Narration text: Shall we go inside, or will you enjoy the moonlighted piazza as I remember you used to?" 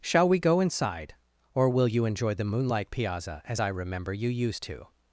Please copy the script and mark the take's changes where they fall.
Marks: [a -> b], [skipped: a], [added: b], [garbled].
Shall we go inside, or will you enjoy the [moonlighted -> moonlight] piazza as I remember you used to?"